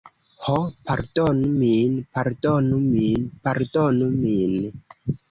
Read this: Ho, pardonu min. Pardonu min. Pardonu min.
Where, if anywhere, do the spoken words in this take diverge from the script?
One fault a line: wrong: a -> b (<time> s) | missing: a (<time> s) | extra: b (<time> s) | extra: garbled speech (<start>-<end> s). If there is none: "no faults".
no faults